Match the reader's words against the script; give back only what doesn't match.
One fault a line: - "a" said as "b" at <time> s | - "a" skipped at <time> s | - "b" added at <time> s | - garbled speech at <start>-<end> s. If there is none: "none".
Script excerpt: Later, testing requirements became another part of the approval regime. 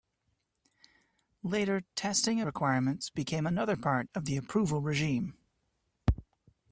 none